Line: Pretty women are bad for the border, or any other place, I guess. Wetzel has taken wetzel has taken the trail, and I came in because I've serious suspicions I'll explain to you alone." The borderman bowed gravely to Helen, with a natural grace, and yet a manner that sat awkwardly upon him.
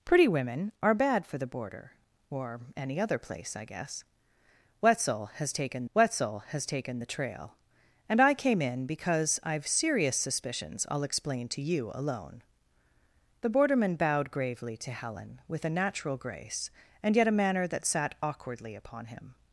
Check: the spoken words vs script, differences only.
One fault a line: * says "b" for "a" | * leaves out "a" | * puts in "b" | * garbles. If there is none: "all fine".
all fine